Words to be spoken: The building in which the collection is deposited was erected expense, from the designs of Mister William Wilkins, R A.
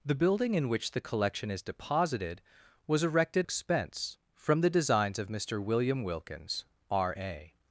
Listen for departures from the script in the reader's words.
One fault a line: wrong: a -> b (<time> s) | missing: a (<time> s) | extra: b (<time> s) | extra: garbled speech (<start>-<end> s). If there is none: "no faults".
no faults